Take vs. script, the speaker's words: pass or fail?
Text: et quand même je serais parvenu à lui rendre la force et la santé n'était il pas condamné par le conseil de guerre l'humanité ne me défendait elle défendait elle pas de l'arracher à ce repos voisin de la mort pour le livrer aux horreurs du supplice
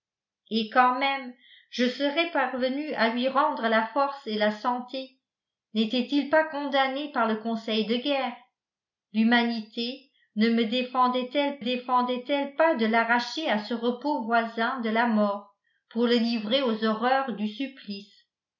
pass